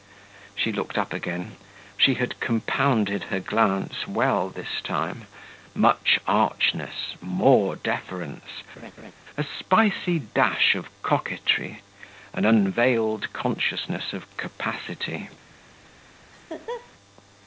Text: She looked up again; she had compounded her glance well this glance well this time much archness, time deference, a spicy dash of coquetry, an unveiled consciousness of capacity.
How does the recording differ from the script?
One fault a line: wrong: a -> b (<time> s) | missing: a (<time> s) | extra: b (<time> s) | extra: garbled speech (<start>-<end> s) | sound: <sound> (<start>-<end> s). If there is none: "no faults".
missing: glance well this (4.8 s)
wrong: time -> more (7.2 s)
sound: laugh (8.8-9.1 s)
sound: laugh (16.3-16.9 s)